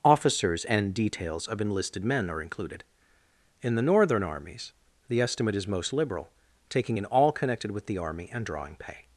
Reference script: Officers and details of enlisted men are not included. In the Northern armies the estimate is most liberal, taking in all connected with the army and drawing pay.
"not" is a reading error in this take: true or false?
true